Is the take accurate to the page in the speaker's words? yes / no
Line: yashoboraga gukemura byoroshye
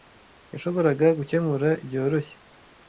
yes